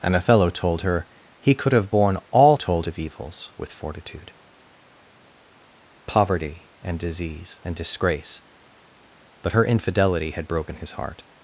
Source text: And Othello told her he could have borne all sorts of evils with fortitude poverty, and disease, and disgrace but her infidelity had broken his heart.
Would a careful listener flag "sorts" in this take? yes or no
yes